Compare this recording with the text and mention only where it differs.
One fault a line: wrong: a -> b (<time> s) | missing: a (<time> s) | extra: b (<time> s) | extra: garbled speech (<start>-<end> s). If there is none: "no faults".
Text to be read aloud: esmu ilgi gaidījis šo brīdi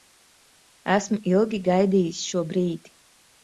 no faults